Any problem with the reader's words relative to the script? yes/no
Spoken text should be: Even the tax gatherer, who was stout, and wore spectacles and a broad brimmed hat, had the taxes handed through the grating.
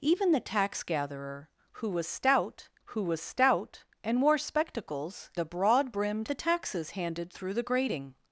yes